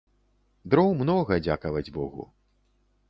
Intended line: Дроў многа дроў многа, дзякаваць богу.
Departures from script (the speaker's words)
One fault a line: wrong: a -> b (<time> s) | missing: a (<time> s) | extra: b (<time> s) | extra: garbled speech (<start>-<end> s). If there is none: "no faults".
missing: дроў многа (1.3 s)